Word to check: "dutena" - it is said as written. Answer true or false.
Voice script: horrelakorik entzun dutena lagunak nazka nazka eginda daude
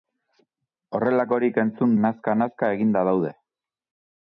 false